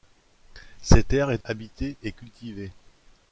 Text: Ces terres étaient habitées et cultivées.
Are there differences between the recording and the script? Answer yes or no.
no